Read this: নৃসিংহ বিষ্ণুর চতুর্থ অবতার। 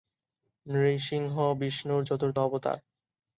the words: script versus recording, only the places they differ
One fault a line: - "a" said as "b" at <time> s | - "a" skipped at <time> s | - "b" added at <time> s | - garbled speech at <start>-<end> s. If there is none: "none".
none